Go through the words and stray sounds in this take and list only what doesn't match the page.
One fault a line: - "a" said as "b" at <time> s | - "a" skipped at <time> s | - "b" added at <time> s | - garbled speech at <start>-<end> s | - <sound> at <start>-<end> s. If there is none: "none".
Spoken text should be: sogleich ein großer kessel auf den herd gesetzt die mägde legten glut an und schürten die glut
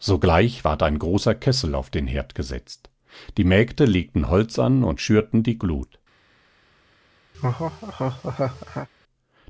- "ward" added at 0.6 s
- "glut" said as "holz" at 4.3 s
- laugh at 7.3-8.9 s